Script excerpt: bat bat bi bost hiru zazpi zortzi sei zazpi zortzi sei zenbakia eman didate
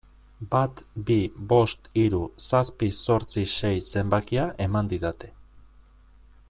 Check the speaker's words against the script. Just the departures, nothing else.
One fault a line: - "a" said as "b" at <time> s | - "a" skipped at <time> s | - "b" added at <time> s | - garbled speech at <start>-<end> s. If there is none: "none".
- "bat" skipped at 0.8 s
- "zazpi zortzi sei" skipped at 3.8 s